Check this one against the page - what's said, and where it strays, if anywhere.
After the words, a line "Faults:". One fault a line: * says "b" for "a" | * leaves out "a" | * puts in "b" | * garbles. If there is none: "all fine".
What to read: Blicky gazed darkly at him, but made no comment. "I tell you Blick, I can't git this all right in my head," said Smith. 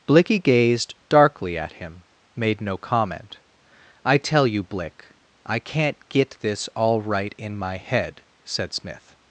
Blicky gazed darkly at him, made no comment. "I tell you Blick, I can't git this all right in my head," said Smith.
Faults:
* leaves out "but"